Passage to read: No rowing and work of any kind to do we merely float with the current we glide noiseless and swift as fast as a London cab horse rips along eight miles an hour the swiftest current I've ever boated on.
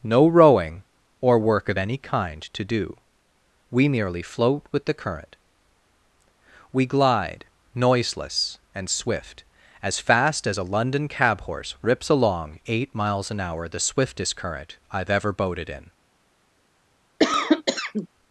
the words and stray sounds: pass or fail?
fail